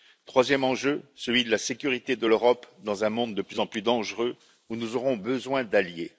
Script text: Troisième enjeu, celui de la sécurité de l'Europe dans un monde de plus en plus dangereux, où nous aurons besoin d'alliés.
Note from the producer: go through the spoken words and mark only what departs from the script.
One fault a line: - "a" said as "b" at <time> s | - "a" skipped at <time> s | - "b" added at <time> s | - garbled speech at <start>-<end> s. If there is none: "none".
none